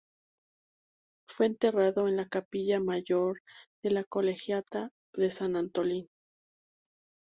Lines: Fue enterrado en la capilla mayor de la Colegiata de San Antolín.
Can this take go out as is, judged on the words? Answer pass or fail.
pass